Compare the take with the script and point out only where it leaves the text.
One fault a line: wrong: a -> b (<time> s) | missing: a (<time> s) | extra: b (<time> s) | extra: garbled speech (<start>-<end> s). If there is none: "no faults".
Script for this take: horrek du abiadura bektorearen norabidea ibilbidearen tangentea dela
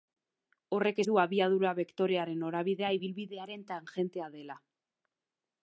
no faults